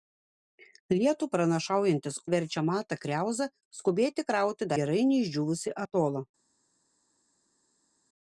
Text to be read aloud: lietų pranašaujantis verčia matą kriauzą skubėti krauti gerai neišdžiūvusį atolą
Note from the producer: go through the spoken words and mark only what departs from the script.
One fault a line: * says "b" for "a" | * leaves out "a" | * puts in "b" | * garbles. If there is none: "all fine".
all fine